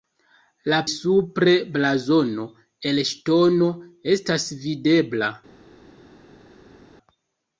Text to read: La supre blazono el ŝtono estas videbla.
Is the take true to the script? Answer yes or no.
yes